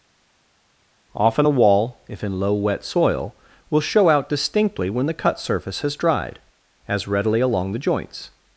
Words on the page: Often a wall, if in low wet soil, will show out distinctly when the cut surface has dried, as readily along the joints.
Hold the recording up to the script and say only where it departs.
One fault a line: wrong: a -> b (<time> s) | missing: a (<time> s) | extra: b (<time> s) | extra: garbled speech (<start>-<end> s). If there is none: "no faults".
no faults